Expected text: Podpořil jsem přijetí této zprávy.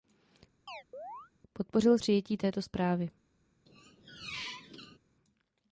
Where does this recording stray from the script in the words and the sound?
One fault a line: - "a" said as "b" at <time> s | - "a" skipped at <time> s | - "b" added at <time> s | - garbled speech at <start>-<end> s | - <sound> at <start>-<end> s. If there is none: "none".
- chirp at 0.7-1.3 s
- "jsem" skipped at 2.0 s
- squeak at 3.7-5.0 s